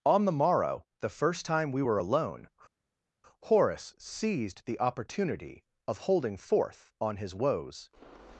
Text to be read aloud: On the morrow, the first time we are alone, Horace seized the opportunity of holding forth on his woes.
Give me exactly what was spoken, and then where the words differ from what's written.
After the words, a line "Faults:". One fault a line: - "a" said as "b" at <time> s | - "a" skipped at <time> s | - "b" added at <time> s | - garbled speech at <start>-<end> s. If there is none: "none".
On the morrow, the first time we were alone, Horace seized the opportunity of holding forth on his woes.
Faults:
- "are" said as "were" at 1.8 s